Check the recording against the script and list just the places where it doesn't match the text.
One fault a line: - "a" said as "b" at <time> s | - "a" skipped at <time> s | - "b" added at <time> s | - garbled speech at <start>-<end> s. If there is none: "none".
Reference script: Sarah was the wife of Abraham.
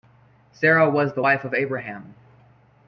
none